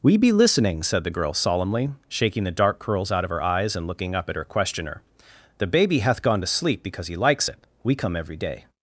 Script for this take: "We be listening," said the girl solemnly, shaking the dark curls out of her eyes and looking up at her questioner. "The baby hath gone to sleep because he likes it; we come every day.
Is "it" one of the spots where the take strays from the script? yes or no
no